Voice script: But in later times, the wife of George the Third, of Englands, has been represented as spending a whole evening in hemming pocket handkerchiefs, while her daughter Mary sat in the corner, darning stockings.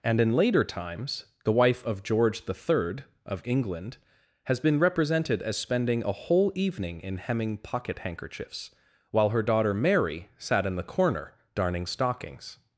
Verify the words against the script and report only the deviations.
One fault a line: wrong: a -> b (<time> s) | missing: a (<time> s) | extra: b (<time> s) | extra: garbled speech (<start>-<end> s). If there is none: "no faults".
wrong: But -> And (0.0 s)
wrong: Englands -> England (3.5 s)